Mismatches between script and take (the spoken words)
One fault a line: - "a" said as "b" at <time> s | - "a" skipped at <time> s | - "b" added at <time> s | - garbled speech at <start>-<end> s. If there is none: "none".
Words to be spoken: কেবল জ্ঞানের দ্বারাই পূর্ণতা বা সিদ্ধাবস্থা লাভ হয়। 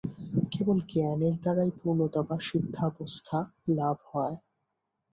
none